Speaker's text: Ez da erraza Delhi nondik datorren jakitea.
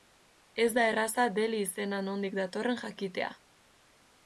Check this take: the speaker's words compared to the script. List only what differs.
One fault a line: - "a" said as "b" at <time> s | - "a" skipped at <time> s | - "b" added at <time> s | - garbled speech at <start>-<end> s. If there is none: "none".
- "izena" added at 1.6 s